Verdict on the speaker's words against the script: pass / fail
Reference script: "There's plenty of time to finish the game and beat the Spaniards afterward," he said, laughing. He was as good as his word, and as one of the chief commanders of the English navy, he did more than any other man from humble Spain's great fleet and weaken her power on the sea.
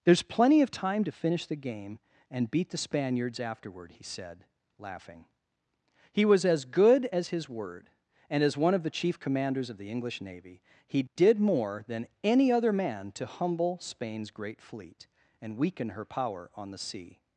fail